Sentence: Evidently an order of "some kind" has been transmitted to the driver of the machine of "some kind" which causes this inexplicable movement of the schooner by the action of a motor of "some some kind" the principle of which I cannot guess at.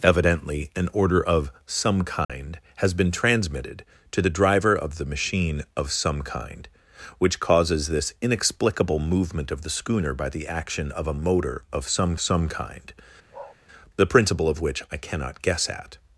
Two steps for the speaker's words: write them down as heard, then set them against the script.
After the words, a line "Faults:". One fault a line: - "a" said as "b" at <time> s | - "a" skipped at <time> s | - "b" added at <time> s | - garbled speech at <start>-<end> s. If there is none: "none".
Evidently an order of "some kind" has been transmitted to the driver of the machine of "some kind" which causes this inexplicable movement of the schooner by the action of a motor of "some some kind" the principle of which I cannot guess at.
Faults:
none